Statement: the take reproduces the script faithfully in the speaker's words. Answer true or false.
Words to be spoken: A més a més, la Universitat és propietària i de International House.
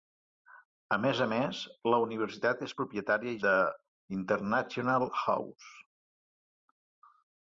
true